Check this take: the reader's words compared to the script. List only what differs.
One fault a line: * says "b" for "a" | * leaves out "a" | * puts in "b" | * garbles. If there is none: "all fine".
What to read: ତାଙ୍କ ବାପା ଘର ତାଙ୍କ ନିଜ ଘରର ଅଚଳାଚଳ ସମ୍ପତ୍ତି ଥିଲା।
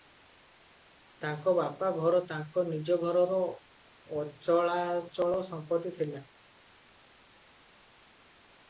all fine